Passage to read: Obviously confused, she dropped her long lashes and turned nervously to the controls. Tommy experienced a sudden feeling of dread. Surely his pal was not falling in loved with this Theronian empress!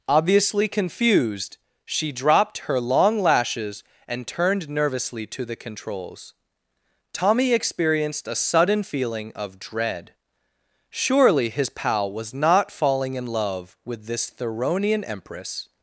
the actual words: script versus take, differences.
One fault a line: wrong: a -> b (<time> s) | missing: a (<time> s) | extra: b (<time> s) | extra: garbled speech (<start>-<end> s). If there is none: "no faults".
wrong: loved -> love (13.3 s)